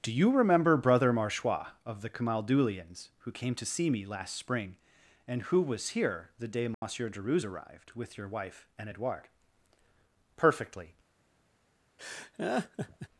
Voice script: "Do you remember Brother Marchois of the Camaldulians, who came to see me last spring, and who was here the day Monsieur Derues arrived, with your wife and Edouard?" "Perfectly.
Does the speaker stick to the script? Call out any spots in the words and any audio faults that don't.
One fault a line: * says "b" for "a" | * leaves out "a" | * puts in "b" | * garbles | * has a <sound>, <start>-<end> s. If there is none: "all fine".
* has a dropout, 6.7-6.8 s
* has a laugh, 12.0-13.1 s